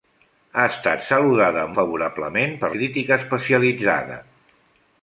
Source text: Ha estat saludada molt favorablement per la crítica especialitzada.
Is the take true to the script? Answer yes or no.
no